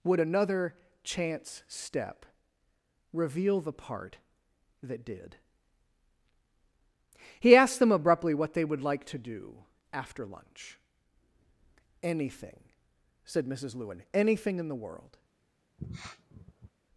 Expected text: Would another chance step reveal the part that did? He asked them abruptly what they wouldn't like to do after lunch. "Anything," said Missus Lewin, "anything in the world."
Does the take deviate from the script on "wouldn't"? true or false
true